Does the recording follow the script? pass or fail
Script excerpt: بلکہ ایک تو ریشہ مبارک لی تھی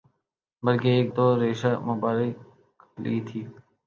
pass